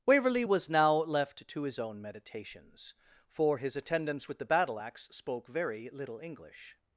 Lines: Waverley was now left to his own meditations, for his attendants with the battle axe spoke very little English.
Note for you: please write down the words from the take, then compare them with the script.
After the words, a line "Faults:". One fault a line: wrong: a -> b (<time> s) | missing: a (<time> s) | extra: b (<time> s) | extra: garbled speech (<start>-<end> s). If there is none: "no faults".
Waverley was now left to his own meditations, for his attendants with the battle axe spoke very little English.
Faults:
no faults